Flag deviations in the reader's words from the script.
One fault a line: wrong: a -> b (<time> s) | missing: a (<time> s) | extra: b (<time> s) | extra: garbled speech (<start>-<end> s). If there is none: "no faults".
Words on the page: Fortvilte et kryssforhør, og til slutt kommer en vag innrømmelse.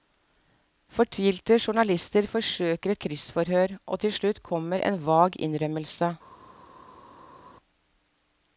extra: journalister forsøker (1.6 s)